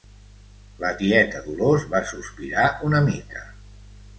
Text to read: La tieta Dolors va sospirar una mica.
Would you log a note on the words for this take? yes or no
no